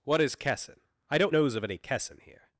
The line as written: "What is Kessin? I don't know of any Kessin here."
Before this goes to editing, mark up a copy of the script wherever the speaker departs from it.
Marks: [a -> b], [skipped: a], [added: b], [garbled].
"What is Kessin? I don't [know -> knows] of any Kessin here."